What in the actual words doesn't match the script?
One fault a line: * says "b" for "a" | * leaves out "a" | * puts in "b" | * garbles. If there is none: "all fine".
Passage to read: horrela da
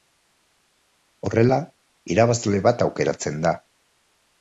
* puts in "irabazle bat aukeratzen"